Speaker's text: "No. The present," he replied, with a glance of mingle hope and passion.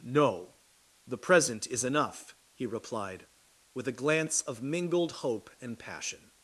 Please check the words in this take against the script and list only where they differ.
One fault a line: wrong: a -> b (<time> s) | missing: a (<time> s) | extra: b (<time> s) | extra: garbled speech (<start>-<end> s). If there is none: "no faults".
extra: is enough (1.7 s)
wrong: mingle -> mingled (4.6 s)